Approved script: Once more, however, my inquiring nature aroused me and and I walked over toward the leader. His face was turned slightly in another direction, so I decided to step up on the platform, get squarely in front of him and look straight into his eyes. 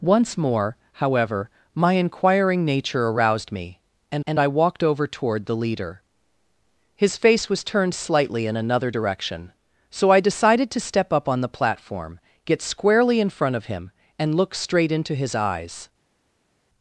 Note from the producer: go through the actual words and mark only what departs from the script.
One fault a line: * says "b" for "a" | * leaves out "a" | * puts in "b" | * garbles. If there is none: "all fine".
all fine